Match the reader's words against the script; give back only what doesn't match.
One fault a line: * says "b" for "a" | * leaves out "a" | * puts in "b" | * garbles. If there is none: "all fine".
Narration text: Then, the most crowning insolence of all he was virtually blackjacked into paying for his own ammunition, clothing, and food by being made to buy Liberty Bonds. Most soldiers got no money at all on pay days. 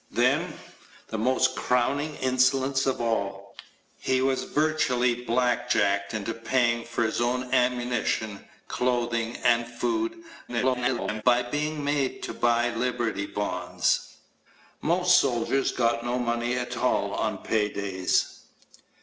* garbles